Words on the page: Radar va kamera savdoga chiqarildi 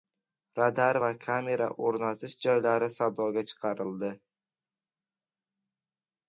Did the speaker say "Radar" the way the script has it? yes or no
yes